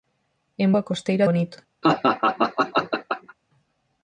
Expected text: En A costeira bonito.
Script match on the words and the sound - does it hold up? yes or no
no